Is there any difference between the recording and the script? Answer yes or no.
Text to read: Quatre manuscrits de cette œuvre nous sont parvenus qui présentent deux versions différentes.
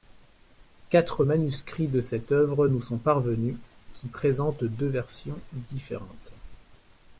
no